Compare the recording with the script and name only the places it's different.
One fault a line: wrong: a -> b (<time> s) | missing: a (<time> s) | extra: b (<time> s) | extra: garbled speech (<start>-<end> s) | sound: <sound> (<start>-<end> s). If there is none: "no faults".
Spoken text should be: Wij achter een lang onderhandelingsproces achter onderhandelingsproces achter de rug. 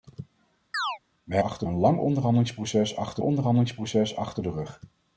sound: chirp (0.7-1.0 s)